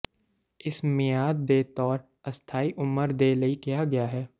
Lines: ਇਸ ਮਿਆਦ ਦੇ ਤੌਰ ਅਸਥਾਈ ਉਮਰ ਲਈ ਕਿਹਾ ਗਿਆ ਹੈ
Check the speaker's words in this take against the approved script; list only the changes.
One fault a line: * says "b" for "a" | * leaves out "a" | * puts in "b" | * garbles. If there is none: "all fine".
* puts in "ਦੇ"